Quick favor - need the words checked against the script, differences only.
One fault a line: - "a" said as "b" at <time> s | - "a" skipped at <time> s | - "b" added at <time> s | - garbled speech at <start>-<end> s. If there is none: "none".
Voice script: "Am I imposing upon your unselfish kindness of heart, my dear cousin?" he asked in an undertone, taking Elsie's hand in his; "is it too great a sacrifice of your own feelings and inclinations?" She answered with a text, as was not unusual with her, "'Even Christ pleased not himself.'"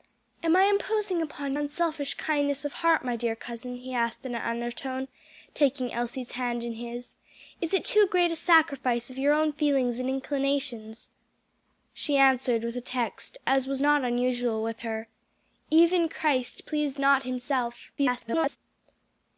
- "your" skipped at 1.5 s
- garbled speech at 18.0-18.6 s